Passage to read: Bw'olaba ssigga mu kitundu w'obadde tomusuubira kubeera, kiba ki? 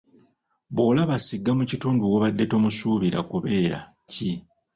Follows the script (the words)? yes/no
no